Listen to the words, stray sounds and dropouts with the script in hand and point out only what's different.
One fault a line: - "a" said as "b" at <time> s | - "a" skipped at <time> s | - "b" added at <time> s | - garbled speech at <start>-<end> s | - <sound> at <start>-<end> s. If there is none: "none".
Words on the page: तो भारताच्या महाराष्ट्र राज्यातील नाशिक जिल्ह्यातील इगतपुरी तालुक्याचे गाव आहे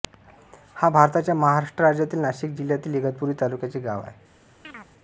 - "तो" said as "हा" at 0.8 s
- chirp at 4.6-4.9 s